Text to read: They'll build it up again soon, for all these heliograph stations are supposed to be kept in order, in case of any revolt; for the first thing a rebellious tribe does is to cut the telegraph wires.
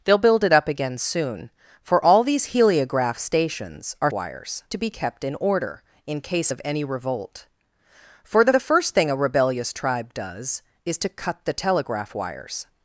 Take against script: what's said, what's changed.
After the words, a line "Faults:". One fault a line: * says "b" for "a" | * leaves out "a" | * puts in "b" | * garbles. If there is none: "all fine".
They'll build it up again soon, for all these heliograph stations are wires to be kept in order, in case of any revolt; for the the first thing a rebellious tribe does is to cut the telegraph wires.
Faults:
* says "wires" for "supposed"
* puts in "the"